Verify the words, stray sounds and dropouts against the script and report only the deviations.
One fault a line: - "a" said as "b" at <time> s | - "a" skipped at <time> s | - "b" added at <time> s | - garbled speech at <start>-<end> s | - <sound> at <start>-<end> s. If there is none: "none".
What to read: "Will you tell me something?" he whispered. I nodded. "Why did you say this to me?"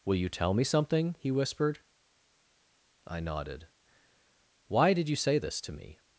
none